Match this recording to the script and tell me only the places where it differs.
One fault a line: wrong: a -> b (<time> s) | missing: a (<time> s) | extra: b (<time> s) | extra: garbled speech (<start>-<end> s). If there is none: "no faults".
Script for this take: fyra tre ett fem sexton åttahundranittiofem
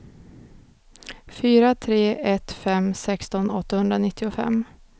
no faults